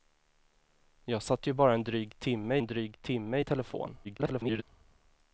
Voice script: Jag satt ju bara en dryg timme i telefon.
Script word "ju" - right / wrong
right